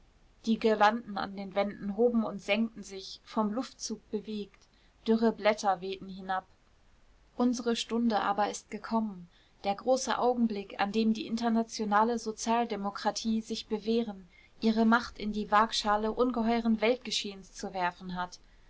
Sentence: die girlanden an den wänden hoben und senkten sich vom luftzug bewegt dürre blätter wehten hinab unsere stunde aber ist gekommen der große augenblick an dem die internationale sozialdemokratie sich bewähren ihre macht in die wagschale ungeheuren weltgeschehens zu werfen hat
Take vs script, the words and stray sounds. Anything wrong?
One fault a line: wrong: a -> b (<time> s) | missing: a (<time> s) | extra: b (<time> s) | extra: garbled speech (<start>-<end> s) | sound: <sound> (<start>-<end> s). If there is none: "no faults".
no faults